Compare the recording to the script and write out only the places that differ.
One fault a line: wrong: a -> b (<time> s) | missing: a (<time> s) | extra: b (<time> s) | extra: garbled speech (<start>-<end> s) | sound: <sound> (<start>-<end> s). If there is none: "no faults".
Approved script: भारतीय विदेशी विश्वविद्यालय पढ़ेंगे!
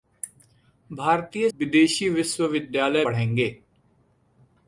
no faults